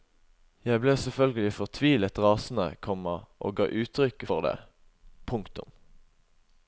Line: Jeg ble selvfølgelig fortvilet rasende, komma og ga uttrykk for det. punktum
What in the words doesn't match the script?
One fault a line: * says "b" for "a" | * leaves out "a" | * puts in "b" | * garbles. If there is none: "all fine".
all fine